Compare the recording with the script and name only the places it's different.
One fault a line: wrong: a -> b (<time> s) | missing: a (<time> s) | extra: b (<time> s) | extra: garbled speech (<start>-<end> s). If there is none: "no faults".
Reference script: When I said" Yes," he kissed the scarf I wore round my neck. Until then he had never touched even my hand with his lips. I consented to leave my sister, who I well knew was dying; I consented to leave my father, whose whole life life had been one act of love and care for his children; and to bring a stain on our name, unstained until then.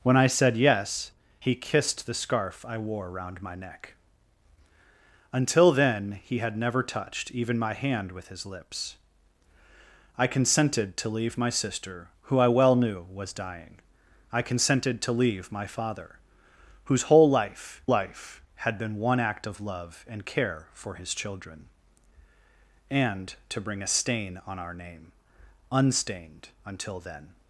no faults